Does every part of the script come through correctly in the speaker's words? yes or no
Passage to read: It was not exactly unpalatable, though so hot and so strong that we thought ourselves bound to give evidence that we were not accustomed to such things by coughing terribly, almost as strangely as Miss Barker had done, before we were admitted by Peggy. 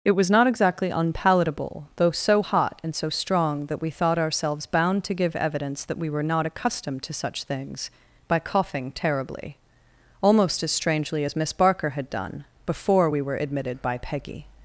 yes